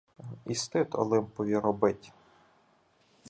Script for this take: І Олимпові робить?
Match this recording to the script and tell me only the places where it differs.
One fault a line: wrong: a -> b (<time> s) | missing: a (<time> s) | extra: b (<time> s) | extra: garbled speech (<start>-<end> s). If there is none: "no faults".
extra: стид (0.6 s)